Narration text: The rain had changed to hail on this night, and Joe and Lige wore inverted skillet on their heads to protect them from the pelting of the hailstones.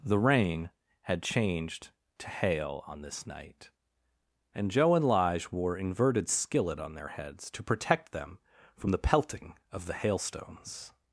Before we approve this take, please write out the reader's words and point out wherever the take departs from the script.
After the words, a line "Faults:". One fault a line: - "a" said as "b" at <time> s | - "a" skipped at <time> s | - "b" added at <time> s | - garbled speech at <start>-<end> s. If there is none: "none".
The rain had changed to hail on this night, and Joe and Lige wore inverted skillet on their heads to protect them from the pelting of the hailstones.
Faults:
none